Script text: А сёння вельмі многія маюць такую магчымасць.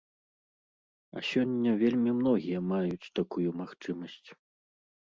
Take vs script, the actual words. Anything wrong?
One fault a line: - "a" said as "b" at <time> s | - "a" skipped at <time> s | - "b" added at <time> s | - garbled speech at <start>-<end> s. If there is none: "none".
none